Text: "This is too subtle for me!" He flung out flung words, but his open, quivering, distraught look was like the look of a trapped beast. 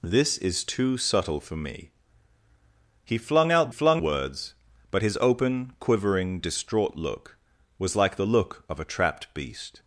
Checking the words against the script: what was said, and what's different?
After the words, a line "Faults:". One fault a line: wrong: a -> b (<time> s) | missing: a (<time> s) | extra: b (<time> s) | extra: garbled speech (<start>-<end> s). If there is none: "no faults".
"This is too subtle for me!" He flung out flung words, but his open, quivering, distraught look was like the look of a trapped beast.
Faults:
no faults